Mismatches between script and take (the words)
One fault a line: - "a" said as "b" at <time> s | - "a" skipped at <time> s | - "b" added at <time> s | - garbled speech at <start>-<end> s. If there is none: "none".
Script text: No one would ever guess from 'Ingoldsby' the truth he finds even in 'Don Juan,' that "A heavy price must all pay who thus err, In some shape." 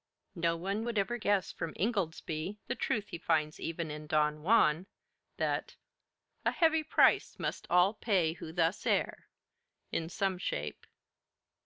none